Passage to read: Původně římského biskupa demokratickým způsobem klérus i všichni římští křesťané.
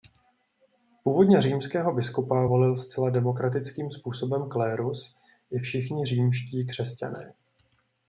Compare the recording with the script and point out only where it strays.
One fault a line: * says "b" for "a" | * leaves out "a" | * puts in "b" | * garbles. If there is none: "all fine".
* puts in "volil zcela"